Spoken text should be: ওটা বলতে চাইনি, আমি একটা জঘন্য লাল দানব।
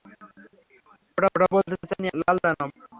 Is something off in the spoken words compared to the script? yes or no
yes